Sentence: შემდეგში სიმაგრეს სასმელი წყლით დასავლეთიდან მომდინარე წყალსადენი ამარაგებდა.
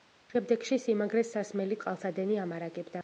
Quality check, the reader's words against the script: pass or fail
fail